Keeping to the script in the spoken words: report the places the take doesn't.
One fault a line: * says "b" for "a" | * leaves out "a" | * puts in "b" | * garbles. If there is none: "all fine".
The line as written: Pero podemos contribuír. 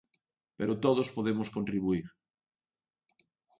* puts in "todos"